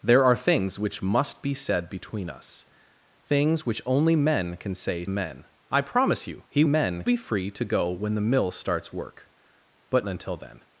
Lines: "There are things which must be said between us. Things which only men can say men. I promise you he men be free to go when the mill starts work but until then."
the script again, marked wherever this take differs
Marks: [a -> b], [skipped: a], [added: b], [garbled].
"There are things which must be said between us. Things which only men can say men. I promise you he men be free to go when the mill starts work but until then."